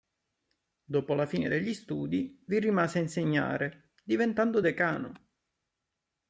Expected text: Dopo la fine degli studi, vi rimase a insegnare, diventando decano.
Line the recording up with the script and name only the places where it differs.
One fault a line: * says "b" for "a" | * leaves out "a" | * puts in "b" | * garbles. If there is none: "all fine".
all fine